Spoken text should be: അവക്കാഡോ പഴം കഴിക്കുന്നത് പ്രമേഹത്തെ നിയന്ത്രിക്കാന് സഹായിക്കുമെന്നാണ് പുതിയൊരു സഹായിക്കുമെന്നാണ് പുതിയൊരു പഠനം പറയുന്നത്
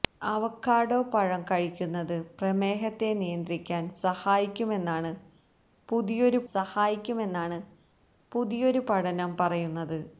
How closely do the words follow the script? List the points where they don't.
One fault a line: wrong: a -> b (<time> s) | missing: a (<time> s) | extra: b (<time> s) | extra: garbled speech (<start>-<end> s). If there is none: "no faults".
no faults